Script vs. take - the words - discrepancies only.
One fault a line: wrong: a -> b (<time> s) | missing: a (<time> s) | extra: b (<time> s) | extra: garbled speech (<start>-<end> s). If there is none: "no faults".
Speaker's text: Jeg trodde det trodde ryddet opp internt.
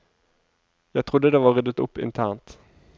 wrong: trodde -> var (1.4 s)